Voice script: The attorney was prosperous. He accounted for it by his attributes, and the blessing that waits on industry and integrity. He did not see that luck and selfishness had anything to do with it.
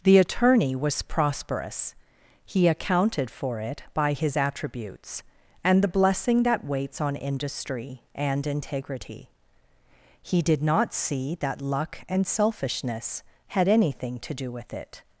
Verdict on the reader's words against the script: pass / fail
pass